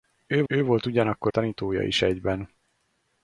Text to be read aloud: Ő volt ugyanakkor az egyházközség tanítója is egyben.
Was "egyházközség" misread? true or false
true